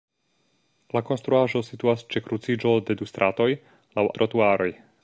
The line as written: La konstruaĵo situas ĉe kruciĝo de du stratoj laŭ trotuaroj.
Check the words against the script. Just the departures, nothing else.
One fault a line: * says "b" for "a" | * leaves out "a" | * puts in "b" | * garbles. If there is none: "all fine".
all fine